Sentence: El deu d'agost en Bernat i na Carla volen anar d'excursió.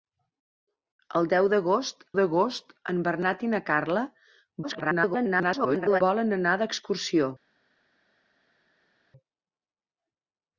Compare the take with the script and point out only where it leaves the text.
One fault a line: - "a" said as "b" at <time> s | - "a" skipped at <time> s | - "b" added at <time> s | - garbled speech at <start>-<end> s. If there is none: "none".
- "d'agost" added at 2.2 s
- garbled speech at 4.6-6.0 s